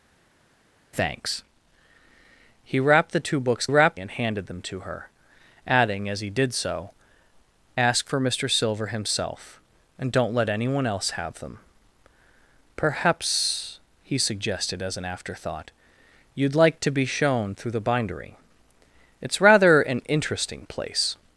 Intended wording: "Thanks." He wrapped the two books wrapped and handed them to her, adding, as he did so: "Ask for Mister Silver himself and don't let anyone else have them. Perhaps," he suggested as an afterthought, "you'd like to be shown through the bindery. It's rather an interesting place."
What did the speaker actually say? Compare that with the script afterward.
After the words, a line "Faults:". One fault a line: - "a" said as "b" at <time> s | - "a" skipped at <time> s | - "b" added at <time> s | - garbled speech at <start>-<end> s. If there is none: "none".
"Thanks." He wrapped the two books wrapped and handed them to her, adding, as he did so: "Ask for Mister Silver himself and don't let anyone else have them. Perhaps," he suggested as an afterthought, "you'd like to be shown through the bindery. It's rather an interesting place."
Faults:
none